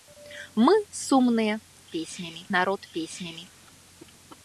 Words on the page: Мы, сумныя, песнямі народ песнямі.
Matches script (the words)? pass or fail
pass